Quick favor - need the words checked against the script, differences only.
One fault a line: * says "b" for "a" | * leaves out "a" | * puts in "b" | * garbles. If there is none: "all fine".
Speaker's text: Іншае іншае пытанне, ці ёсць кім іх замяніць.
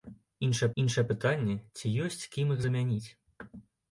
all fine